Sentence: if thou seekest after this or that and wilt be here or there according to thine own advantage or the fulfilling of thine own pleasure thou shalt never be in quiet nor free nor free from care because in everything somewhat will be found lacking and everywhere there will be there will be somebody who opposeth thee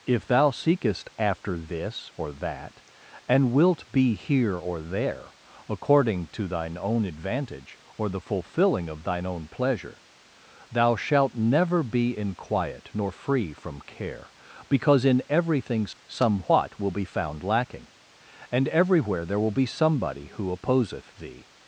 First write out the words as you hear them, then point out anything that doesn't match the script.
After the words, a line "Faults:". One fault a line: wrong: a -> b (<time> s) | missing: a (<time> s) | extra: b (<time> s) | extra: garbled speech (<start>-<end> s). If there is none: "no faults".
if thou seekest after this or that and wilt be here or there according to thine own advantage or the fulfilling of thine own pleasure thou shalt never be in quiet nor free from care because in everything somewhat will be found lacking and everywhere there will be somebody who opposeth thee
Faults:
missing: nor free (13.5 s)
missing: there will be (19.6 s)